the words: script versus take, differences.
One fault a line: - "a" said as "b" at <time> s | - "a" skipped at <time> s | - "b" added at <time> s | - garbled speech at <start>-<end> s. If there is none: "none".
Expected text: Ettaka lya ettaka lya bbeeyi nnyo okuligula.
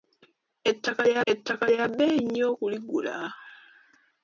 none